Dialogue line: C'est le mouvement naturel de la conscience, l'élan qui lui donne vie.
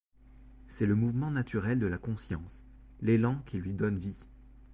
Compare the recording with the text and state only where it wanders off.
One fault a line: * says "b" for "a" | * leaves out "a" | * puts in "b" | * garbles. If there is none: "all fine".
all fine